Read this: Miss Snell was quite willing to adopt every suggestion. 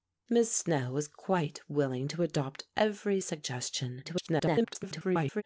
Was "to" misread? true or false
false